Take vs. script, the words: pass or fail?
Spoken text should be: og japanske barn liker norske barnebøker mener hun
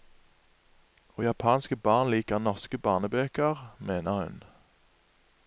pass